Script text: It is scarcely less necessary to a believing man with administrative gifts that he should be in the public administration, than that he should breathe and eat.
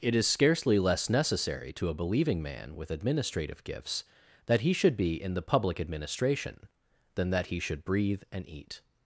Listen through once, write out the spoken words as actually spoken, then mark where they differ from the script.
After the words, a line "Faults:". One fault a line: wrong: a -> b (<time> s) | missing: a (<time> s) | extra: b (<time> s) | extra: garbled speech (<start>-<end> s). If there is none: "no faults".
It is scarcely less necessary to a believing man with administrative gifts that he should be in the public administration, than that he should breathe and eat.
Faults:
no faults